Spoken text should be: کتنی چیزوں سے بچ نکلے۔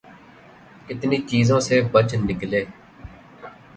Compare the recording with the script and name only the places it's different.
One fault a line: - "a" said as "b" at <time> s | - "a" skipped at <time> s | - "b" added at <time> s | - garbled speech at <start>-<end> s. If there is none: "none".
none